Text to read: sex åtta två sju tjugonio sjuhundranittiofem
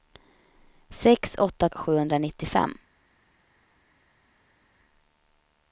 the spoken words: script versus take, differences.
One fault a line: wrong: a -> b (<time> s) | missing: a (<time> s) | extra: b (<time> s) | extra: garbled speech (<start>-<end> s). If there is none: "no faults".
missing: två sju tjugonio (1.7 s)